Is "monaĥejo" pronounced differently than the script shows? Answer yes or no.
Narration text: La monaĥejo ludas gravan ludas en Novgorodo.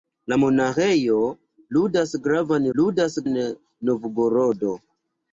no